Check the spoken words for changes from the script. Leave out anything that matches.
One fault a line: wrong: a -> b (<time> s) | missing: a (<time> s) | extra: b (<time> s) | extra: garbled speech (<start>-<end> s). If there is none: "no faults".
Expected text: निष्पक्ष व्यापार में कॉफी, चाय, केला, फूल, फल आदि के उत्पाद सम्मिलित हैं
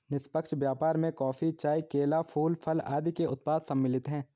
no faults